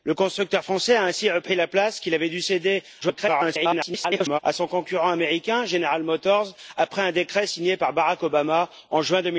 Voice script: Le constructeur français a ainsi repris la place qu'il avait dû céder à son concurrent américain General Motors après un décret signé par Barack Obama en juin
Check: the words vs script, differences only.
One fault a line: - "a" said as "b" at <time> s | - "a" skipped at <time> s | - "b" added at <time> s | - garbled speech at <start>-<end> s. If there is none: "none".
- garbled speech at 3.0-4.4 s